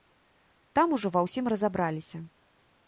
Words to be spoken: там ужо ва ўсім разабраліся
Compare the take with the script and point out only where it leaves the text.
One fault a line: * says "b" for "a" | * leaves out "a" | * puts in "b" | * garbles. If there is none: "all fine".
all fine